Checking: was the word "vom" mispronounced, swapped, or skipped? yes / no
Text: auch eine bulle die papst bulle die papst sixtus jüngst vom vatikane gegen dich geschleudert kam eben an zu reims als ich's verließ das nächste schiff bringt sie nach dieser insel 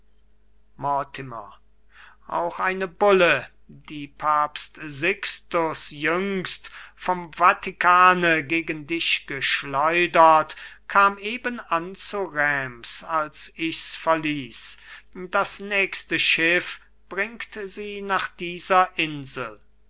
no